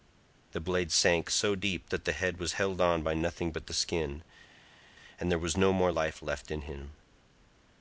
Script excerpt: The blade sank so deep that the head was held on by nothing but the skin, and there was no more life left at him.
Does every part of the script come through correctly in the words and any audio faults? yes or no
no